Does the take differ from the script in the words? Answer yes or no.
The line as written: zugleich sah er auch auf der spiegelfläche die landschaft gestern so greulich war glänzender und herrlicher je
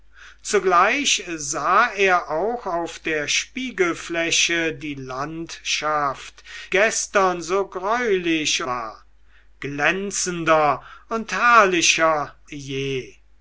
no